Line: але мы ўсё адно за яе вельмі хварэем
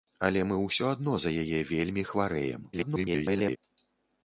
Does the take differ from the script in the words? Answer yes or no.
yes